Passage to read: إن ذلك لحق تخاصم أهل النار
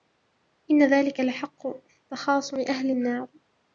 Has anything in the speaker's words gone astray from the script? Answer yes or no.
no